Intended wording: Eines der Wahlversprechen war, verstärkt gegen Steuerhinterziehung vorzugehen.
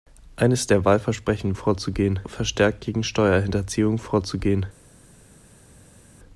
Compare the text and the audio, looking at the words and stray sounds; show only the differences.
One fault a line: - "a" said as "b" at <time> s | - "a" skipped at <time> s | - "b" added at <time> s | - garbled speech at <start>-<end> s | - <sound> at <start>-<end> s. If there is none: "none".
- "war" said as "vorzugehen" at 1.5 s